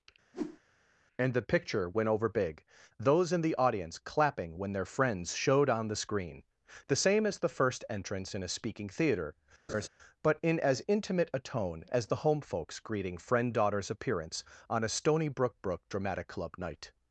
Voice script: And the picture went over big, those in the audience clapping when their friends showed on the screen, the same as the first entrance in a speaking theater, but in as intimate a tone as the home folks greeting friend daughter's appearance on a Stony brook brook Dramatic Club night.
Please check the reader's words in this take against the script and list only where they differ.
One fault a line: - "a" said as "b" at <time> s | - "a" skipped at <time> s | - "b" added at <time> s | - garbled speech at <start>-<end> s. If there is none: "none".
none